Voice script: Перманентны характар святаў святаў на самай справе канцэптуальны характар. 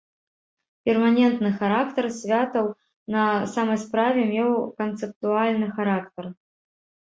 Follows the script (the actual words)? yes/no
no